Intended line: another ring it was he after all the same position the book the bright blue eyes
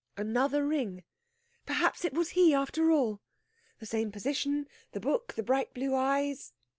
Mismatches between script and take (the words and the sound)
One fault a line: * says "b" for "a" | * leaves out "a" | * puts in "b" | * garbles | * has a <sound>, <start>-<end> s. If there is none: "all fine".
* puts in "perhaps"